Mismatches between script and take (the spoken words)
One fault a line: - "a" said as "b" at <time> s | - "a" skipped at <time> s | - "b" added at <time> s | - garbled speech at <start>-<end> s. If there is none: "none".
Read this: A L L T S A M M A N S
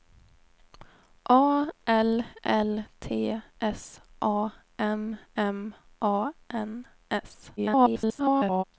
- garbled speech at 7.6-8.6 s